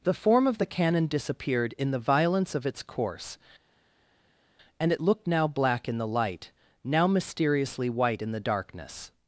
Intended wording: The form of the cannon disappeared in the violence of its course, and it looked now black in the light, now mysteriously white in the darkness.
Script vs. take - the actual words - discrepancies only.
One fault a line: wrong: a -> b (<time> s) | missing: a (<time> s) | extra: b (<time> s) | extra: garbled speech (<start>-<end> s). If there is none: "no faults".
no faults